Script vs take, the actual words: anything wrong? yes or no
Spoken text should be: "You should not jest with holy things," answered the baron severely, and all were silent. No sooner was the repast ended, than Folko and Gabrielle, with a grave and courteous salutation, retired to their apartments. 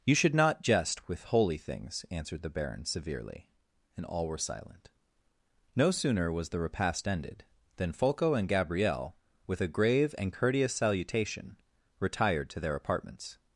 no